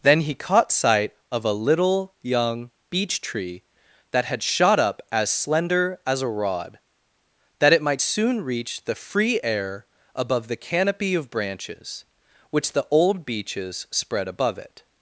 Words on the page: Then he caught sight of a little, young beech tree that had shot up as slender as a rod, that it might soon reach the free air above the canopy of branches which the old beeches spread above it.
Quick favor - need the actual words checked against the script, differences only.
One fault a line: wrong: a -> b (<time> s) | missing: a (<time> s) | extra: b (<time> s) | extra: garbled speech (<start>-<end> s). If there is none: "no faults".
no faults